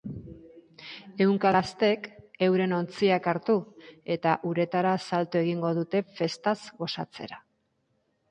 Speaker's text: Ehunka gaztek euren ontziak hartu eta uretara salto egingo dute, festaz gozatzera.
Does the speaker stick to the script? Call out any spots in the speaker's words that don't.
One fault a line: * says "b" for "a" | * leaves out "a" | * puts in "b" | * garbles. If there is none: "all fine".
all fine